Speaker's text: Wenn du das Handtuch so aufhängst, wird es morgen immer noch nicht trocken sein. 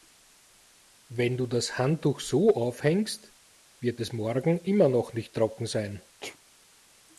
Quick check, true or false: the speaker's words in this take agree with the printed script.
true